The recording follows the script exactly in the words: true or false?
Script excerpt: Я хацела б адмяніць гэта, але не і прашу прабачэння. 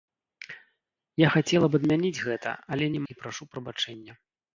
true